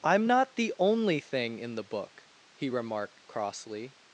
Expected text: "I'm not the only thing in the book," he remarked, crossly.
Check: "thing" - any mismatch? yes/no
no